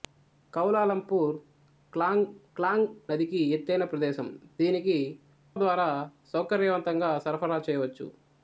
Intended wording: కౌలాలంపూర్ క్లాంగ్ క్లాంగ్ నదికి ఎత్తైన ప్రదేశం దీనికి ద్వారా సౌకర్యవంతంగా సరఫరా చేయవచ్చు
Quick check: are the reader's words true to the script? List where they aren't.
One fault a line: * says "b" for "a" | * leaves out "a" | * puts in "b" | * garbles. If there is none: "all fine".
all fine